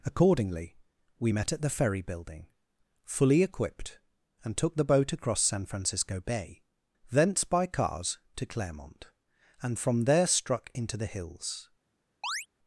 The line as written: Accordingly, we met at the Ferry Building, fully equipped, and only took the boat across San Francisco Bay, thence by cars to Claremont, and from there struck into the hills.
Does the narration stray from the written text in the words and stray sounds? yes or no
yes